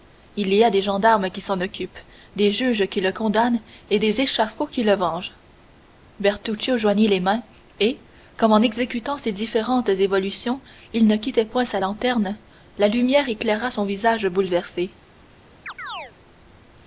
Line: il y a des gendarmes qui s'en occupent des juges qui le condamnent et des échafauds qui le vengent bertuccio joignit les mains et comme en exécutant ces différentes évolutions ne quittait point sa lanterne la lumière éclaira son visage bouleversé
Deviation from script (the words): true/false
true